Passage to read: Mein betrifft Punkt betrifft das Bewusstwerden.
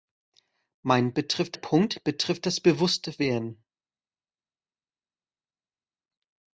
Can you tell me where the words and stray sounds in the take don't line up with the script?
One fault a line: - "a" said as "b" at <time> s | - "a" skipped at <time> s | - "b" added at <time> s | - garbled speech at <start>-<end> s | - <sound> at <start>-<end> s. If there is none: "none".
none